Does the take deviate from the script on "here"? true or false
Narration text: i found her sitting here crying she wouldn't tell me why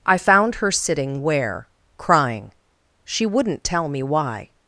true